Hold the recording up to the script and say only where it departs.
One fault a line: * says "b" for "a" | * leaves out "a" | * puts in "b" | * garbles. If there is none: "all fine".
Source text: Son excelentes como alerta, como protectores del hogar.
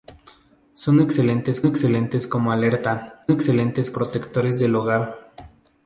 * puts in "excelentes"
* says "excelentes" for "como"